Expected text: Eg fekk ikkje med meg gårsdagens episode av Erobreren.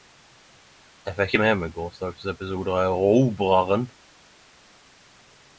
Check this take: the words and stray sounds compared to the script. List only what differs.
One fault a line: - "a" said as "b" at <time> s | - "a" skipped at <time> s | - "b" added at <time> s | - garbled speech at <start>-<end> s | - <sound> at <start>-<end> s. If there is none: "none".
none